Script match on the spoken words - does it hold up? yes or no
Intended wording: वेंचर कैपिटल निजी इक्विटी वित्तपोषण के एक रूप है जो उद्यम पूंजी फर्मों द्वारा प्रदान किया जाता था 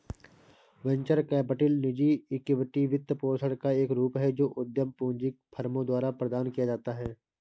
no